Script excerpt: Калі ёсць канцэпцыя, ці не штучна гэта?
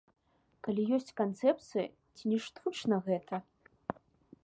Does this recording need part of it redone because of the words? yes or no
no